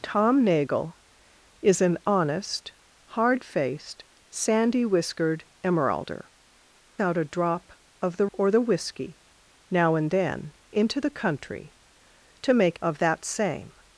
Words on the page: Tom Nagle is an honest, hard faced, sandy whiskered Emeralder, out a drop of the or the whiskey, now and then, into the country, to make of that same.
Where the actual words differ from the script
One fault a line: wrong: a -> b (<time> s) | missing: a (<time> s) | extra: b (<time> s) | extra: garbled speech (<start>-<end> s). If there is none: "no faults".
no faults